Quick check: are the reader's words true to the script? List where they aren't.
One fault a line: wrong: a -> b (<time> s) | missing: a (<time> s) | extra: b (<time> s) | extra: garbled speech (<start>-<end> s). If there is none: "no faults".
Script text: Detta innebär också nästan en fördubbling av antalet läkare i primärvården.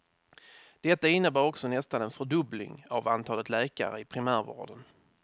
no faults